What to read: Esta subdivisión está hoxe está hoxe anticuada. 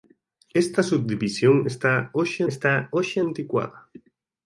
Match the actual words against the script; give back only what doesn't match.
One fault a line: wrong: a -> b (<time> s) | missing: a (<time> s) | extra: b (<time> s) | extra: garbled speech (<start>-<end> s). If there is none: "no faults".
no faults